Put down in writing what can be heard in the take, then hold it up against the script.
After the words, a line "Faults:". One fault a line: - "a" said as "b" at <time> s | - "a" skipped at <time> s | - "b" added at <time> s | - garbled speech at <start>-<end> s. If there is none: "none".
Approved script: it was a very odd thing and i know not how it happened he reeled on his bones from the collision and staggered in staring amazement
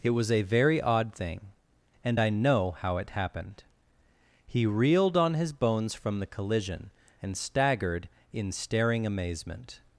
it was a very odd thing and i know how it happened he reeled on his bones from the collision and staggered in staring amazement
Faults:
- "not" skipped at 2.7 s